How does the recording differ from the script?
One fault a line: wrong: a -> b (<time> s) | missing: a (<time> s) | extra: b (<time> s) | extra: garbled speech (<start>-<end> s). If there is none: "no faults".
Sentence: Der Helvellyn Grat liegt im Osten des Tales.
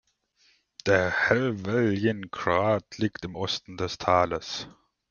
no faults